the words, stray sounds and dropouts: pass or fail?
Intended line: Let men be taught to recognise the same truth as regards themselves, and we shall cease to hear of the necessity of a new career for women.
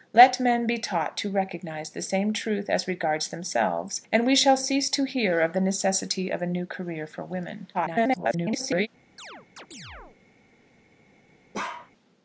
fail